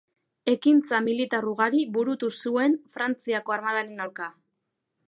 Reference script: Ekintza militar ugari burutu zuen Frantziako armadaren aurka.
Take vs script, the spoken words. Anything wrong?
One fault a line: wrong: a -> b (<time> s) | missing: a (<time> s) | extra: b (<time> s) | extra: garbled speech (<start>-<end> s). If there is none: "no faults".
no faults